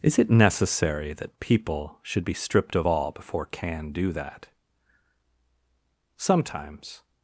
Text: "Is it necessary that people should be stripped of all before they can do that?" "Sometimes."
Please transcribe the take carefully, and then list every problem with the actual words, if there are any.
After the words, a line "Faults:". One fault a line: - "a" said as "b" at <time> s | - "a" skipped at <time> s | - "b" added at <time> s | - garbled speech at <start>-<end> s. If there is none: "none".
"Is it necessary that people should be stripped of all before can do that?" "Sometimes."
Faults:
- "they" skipped at 3.5 s